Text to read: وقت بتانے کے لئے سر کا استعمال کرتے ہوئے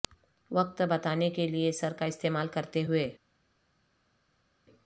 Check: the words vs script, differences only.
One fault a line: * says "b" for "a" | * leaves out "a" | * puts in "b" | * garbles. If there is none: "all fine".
all fine